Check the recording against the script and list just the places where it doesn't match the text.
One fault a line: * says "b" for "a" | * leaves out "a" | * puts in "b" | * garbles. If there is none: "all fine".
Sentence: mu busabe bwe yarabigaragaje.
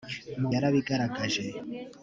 * leaves out "busabe bwe"